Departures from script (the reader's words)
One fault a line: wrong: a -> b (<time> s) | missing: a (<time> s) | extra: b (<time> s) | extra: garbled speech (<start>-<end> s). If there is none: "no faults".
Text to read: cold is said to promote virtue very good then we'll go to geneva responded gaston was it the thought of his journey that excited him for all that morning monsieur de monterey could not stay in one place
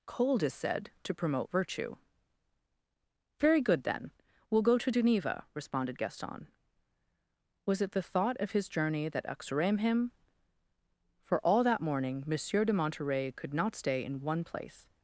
wrong: excited -> uxorem (9.3 s)